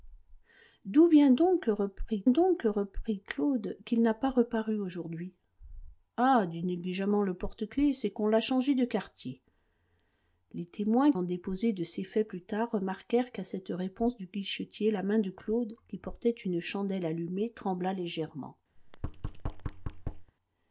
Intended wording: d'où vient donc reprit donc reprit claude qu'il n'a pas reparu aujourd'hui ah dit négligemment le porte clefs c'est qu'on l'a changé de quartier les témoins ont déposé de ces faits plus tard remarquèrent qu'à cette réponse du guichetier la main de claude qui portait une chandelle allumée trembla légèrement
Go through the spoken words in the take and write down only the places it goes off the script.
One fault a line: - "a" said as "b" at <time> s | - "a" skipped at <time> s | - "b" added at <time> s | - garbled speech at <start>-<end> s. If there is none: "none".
none